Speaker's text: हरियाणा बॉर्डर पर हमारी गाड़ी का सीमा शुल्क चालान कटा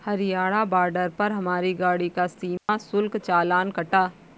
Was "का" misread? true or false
false